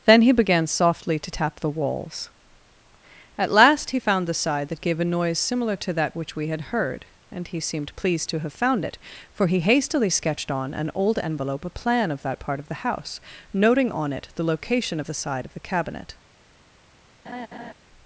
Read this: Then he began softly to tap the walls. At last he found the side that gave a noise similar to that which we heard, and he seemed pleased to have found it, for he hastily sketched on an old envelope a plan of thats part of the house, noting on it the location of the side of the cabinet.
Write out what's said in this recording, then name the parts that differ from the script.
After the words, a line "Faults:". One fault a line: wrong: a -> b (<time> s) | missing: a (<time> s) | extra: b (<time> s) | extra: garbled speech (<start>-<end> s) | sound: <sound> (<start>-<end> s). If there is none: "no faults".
Then he began softly to tap the walls. At last he found the side that gave a noise similar to that which we had heard, and he seemed pleased to have found it, for he hastily sketched on an old envelope a plan of that part of the house, noting on it the location of the side of the cabinet.
Faults:
extra: had (6.5 s)
wrong: thats -> that (12.2 s)
sound: laugh (17.3-17.7 s)